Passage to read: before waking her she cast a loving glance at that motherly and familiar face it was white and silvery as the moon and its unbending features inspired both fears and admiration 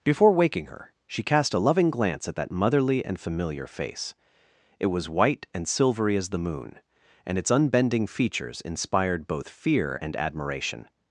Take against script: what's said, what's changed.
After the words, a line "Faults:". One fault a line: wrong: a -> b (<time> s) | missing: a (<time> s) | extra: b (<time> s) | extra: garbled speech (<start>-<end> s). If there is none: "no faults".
before waking her she cast a loving glance at that motherly and familiar face it was white and silvery as the moon and its unbending features inspired both fear and admiration
Faults:
wrong: fears -> fear (9.5 s)